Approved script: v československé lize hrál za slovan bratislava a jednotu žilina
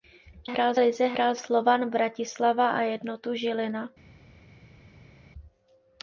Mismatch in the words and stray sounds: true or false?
true